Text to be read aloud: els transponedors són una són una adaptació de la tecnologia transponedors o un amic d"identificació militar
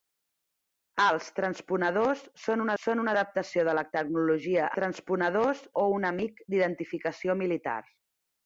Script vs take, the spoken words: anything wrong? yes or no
no